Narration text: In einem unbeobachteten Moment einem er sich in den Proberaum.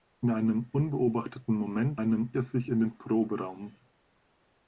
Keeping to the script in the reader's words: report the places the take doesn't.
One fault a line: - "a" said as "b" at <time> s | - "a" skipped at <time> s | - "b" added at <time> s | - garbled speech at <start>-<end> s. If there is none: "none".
none